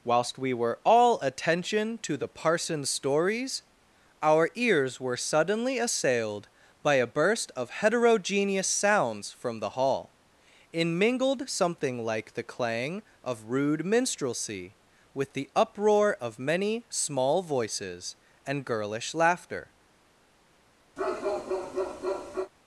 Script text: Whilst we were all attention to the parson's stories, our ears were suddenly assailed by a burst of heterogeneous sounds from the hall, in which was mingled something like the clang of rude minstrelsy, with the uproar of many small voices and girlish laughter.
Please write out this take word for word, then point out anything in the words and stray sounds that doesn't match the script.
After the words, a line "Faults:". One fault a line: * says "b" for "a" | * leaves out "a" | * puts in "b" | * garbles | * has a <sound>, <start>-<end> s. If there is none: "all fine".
Whilst we were all attention to the parson's stories, our ears were suddenly assailed by a burst of heterogeneous sounds from the hall, in mingled something like the clang of rude minstrelsy, with the uproar of many small voices and girlish laughter.
Faults:
* leaves out "which was"
* has a bark, 21.0-22.5 s